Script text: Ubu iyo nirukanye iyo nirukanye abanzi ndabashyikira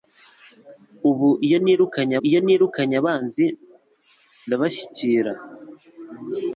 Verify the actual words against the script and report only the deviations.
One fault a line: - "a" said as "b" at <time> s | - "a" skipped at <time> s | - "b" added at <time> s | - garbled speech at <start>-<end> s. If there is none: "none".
none